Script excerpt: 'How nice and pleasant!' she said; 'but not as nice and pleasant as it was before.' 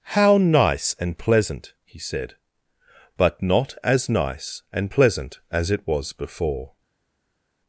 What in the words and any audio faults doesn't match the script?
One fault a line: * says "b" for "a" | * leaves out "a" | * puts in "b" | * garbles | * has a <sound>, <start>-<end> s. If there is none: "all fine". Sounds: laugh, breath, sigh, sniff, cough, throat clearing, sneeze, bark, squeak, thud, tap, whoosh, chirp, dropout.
* says "he" for "she"